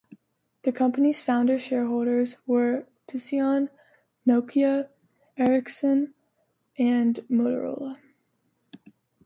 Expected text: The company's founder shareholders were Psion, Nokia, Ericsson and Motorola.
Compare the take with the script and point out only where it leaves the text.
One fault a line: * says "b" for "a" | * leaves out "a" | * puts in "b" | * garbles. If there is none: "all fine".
all fine